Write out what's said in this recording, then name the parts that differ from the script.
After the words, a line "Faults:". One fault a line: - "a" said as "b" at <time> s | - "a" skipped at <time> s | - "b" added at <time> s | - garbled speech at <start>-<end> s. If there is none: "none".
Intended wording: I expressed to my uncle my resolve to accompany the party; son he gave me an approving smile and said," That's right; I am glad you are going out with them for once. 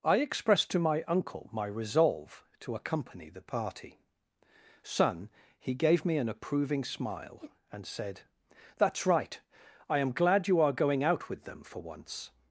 I expressed to my uncle my resolve to accompany the party; son he gave me an approving smile and said," That's right; I am glad you are going out with them for once.
Faults:
none